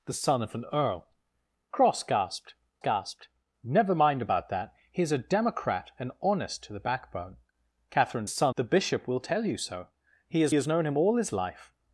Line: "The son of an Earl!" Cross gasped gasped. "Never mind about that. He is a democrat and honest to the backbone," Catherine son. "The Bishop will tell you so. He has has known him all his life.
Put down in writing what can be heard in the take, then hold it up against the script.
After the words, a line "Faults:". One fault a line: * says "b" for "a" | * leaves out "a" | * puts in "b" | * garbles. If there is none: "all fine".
"The son of an Earl!" Cross gasped gasped. "Never mind about that. He is a democrat and honest to the backbone," Catherine son. "The Bishop will tell you so. He has has known him all his life.
Faults:
all fine